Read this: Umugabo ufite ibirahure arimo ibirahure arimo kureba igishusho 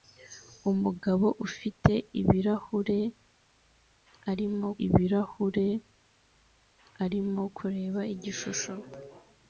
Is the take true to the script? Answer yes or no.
yes